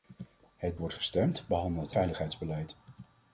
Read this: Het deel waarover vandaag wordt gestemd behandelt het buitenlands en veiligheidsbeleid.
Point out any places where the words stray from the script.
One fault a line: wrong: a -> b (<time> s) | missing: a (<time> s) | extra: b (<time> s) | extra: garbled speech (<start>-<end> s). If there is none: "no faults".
missing: deel waarover vandaag (0.8 s)
missing: het buitenlands en (1.9 s)